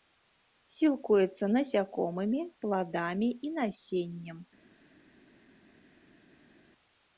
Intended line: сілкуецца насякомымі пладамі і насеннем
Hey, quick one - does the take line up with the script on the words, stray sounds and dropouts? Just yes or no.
yes